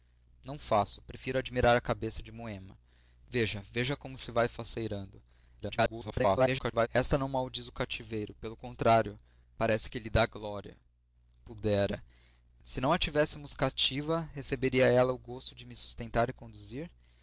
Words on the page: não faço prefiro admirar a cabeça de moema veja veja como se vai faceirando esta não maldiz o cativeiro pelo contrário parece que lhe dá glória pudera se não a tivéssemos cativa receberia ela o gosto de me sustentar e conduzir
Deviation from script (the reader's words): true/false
true